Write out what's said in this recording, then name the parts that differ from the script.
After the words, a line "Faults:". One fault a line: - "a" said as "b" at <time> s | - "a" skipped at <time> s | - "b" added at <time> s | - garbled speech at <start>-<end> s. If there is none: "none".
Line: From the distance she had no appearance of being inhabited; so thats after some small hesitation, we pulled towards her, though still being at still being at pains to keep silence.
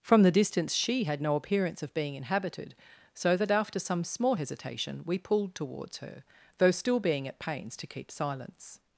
From the distance she had no appearance of being inhabited; so that after some small hesitation, we pulled towards her, though still being at pains to keep silence.
Faults:
- "thats" said as "that" at 3.4 s
- "still being at" skipped at 7.4 s